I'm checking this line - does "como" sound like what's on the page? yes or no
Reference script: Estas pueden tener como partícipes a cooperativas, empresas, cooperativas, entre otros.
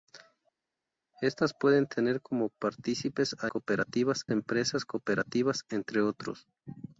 yes